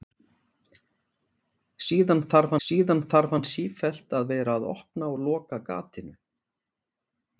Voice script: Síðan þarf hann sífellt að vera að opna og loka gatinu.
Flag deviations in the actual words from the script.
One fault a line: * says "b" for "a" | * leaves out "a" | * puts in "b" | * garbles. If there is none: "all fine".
* puts in "síðan þarf"